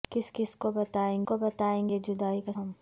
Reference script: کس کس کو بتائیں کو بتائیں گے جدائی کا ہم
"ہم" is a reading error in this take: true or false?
false